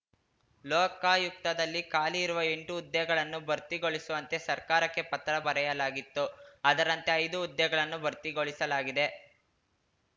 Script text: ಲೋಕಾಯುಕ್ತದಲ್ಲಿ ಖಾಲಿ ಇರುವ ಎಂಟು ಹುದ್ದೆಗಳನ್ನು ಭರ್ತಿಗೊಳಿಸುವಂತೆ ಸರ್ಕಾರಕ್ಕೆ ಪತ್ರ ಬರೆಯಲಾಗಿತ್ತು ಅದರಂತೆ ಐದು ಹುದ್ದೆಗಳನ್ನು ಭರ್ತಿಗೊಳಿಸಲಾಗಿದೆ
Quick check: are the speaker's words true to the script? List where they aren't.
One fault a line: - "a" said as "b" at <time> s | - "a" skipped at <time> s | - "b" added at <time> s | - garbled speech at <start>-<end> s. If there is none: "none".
none